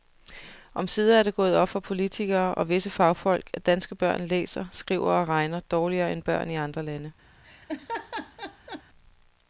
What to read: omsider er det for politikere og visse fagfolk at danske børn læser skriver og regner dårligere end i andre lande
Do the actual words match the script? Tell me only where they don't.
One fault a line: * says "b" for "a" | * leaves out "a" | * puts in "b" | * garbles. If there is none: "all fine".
* puts in "gået op"
* puts in "børn"